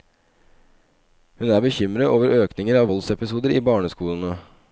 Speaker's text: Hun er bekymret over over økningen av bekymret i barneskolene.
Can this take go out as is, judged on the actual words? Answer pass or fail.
fail